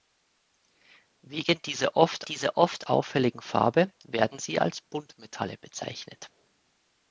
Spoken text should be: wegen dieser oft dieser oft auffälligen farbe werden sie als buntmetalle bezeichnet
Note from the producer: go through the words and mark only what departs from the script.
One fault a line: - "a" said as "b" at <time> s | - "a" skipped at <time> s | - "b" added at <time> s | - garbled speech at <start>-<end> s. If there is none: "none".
none